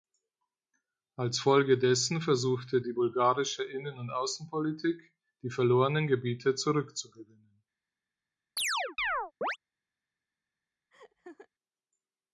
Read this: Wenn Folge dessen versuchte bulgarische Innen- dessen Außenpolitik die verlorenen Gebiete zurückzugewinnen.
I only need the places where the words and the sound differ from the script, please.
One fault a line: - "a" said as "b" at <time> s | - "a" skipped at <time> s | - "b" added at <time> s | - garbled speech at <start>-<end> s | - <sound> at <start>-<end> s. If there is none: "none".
- "Wenn" said as "Als" at 1.1 s
- "die" added at 2.8 s
- "dessen" said as "und" at 4.0 s
- chirp at 8.6-9.6 s
- laugh at 10.9-11.5 s